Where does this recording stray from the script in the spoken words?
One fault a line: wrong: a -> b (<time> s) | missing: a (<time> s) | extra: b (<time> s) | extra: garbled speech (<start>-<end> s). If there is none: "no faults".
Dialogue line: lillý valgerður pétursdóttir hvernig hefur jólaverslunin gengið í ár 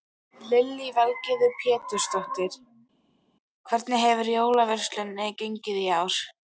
no faults